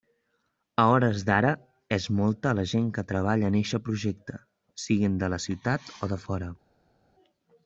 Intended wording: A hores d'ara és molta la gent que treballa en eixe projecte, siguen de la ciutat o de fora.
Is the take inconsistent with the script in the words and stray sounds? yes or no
no